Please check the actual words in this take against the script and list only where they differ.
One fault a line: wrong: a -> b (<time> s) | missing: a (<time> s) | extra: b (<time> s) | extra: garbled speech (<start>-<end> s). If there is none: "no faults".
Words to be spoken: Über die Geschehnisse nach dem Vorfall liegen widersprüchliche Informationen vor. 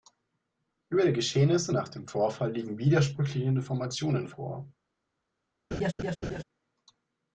no faults